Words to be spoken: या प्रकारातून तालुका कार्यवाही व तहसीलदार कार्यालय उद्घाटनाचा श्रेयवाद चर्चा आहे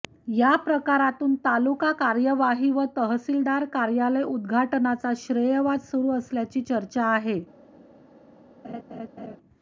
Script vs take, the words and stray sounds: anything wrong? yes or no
yes